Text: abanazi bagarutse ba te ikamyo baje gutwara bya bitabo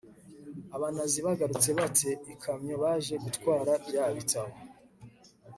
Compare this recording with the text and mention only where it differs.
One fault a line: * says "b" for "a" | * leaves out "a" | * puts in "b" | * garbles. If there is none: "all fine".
all fine